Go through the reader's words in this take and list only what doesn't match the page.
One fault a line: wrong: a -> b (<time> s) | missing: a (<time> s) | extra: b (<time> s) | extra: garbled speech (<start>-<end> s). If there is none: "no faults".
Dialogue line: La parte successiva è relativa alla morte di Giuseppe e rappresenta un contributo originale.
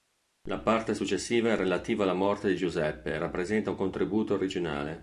no faults